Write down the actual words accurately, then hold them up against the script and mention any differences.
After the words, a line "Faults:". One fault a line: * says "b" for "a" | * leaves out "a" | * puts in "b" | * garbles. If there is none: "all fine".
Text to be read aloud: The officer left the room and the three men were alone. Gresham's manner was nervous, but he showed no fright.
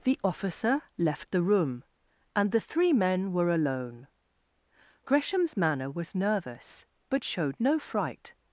The officer left the room and the three men were alone. Gresham's manner was nervous, but showed no fright.
Faults:
* leaves out "he"